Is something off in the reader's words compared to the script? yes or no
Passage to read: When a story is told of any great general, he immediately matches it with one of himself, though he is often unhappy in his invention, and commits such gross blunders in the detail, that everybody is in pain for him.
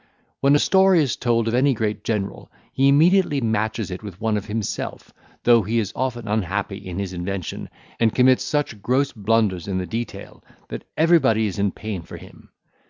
no